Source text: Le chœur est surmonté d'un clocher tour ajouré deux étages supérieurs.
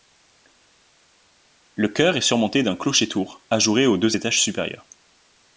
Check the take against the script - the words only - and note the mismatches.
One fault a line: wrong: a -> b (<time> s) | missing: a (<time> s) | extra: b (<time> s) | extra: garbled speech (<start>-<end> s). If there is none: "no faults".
extra: aux (3.9 s)